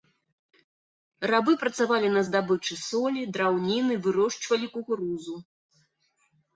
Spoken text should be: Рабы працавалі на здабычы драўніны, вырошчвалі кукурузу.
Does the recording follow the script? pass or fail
fail